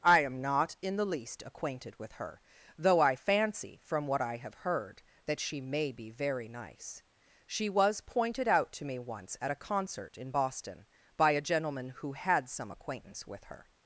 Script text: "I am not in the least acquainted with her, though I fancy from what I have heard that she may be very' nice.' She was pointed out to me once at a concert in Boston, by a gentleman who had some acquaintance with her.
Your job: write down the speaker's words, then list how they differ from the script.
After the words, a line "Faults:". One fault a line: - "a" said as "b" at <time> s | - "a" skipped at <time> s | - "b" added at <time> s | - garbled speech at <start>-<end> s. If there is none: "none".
"I am not in the least acquainted with her, though I fancy from what I have heard that she may be very' nice.' She was pointed out to me once at a concert in Boston, by a gentleman who had some acquaintance with her.
Faults:
none